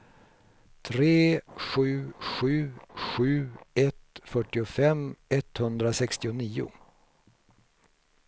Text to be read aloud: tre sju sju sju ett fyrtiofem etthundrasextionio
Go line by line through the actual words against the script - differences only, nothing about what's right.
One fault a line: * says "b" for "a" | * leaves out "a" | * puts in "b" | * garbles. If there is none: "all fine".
all fine